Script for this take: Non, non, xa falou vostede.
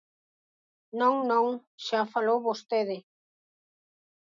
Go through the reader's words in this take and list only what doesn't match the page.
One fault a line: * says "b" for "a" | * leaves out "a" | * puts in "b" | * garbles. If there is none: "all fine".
all fine